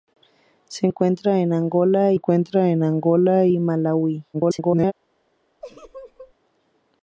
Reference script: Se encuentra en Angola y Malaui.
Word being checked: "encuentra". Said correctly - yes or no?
yes